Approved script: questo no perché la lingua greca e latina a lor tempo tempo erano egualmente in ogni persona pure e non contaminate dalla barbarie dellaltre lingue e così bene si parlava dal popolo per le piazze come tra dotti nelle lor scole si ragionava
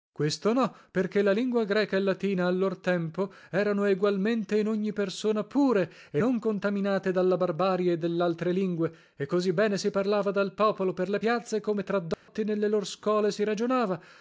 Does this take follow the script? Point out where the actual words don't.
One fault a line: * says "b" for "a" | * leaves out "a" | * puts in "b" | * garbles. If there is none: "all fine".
* leaves out "tempo"